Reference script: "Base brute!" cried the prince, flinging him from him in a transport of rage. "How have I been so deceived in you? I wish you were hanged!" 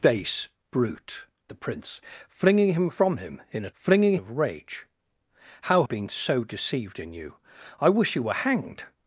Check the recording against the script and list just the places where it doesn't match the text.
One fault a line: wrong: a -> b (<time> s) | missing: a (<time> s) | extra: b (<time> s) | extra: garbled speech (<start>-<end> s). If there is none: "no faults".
missing: cried (1.3 s)
wrong: transport -> flinging (3.7 s)
missing: have I (5.9 s)